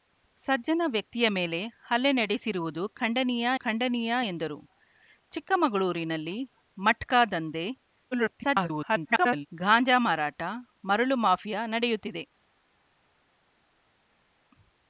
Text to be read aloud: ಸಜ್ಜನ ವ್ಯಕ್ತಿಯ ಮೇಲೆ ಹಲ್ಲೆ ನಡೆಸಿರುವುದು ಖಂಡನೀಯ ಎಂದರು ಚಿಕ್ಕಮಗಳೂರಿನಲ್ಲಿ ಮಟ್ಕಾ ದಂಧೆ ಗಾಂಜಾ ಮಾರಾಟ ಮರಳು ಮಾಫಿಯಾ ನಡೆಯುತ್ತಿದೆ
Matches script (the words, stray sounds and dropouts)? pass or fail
fail